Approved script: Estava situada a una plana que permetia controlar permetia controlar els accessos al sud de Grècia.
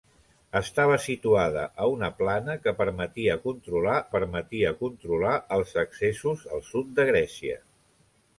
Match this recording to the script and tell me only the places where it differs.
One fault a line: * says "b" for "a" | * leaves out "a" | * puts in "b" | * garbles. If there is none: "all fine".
all fine